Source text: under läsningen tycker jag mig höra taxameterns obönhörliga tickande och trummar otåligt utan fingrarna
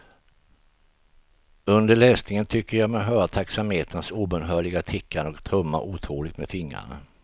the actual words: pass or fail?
fail